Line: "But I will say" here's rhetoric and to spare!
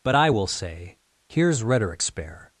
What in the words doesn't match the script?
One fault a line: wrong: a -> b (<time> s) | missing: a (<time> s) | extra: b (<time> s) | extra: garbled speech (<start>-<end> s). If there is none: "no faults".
missing: and to (2.0 s)